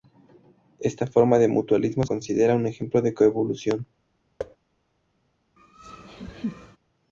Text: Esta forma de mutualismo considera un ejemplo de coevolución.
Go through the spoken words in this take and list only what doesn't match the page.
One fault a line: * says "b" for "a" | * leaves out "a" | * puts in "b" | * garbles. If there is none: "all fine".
all fine